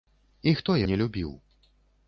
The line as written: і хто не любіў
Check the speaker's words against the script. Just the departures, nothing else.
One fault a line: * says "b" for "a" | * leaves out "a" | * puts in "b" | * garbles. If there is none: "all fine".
all fine